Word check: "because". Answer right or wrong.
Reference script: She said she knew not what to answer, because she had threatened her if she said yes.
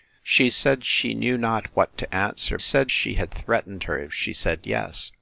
wrong